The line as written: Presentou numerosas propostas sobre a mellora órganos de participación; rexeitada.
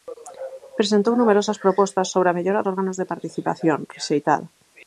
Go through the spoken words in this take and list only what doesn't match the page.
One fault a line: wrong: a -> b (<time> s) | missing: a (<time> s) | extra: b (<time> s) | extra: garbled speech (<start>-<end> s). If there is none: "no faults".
no faults